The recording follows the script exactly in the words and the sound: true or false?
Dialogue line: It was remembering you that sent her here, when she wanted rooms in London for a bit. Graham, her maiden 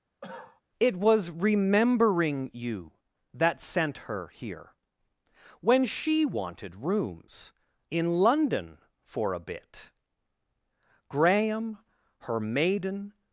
false